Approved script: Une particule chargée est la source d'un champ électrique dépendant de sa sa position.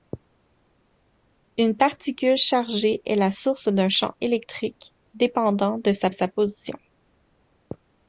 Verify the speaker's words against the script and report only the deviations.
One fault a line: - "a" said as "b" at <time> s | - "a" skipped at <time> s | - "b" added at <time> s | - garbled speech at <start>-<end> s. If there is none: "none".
none